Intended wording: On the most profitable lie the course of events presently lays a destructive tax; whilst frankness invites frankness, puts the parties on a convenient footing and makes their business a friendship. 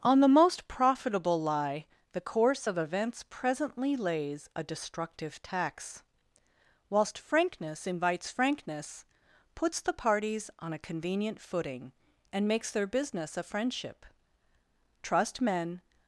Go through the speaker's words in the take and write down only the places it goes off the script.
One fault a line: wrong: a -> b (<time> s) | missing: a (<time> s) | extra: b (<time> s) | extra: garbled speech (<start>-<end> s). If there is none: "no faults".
extra: Trust men (15.0 s)